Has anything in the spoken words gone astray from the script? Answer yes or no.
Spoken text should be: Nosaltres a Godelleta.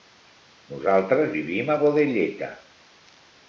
yes